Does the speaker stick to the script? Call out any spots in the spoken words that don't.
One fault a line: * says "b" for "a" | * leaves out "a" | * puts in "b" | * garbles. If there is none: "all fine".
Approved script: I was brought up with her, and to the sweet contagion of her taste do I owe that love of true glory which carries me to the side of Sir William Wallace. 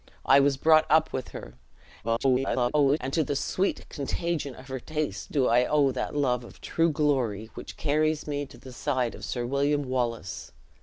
* garbles